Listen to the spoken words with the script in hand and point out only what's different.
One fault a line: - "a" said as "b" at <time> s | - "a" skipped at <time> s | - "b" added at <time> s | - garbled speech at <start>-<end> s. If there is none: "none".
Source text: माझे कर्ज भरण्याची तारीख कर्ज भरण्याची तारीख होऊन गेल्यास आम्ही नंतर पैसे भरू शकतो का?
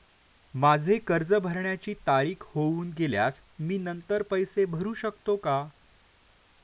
- "कर्ज भरण्याची तारीख" skipped at 2.4 s
- "आम्ही" said as "मी" at 3.6 s